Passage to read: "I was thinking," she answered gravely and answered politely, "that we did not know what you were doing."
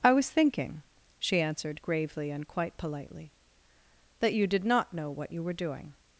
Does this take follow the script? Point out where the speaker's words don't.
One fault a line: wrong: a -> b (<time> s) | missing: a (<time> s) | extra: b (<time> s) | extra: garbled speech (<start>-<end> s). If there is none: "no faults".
wrong: answered -> quite (2.5 s)
wrong: we -> you (4.3 s)